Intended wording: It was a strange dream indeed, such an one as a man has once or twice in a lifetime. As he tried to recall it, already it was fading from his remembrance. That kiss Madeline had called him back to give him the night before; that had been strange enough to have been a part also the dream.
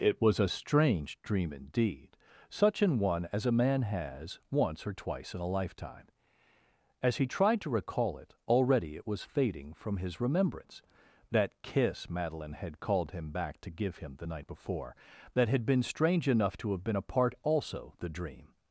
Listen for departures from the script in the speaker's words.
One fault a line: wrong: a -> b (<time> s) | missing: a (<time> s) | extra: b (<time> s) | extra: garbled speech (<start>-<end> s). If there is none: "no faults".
no faults